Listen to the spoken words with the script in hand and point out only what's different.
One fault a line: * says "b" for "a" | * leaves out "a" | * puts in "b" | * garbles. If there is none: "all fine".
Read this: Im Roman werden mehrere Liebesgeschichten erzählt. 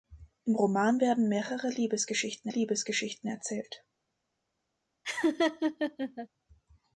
* puts in "Liebesgeschichten"